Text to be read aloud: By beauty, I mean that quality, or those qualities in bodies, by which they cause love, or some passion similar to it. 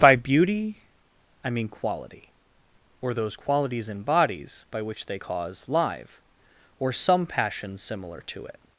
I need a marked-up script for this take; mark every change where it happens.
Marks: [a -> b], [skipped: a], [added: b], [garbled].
By beauty, I mean [skipped: that] quality, or those qualities in bodies, by which they cause [love, -> live] or some passion similar to it.